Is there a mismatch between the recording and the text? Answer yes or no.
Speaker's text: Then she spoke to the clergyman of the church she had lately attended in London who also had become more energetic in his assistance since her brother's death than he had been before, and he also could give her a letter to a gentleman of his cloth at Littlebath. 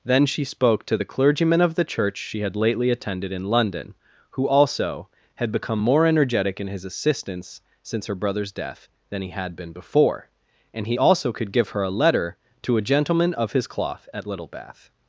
no